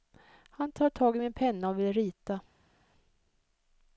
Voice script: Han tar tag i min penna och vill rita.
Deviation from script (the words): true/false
false